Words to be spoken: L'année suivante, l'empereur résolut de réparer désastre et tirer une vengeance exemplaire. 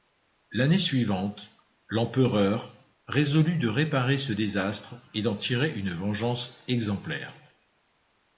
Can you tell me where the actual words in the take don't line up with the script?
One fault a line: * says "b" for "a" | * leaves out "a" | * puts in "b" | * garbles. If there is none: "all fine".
* puts in "ce"
* puts in "d'en"